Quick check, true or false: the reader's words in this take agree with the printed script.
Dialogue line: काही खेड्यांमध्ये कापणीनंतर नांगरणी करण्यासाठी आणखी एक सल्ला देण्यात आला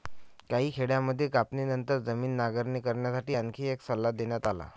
false